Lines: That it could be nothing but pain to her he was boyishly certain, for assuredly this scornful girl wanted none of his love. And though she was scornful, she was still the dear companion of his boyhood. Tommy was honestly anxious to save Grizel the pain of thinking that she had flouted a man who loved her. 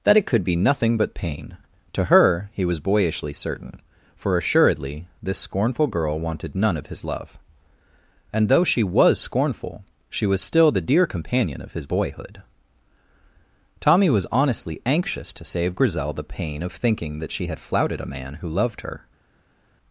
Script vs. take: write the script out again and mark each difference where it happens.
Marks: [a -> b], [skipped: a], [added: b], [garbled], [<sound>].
That it could be nothing but pain to her he was boyishly certain, for assuredly this scornful girl wanted none of his love. And though she was scornful, she was still the dear companion of his boyhood. Tommy was honestly anxious to save Grizel the pain of thinking that she had flouted a man who loved her.